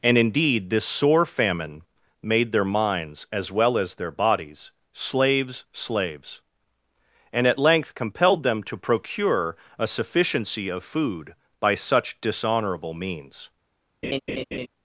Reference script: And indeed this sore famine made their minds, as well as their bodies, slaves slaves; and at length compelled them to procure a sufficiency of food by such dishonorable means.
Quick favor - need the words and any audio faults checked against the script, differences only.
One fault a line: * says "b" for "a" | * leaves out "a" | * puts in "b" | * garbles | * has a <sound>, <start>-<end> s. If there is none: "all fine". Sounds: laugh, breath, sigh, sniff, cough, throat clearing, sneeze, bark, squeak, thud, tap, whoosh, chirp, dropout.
* has a laugh, 14.0-14.7 s